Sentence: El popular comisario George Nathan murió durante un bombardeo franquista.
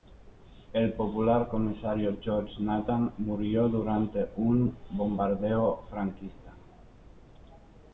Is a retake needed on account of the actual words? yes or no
no